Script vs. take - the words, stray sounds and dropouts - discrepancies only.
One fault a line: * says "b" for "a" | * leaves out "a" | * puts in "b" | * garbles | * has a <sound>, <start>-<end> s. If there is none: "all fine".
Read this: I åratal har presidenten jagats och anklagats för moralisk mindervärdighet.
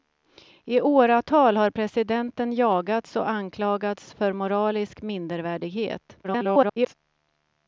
* garbles